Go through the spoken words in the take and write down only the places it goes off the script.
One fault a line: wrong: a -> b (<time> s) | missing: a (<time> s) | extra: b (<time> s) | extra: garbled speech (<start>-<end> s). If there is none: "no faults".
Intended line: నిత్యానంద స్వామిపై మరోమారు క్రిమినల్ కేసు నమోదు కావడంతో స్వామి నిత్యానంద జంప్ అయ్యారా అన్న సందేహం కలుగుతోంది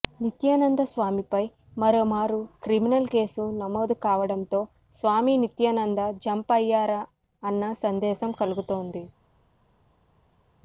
no faults